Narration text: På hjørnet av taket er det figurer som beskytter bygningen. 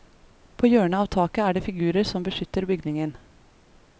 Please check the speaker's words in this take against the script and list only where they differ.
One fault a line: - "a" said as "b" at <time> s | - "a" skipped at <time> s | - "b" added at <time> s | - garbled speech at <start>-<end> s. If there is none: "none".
none